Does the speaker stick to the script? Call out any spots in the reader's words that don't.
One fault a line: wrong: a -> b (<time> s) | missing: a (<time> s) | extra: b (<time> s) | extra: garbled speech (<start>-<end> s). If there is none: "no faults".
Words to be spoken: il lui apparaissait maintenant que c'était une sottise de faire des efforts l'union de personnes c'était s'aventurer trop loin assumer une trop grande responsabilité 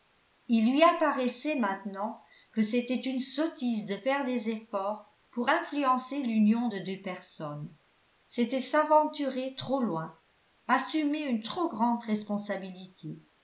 extra: pour influencer (5.3 s)
extra: deux (6.8 s)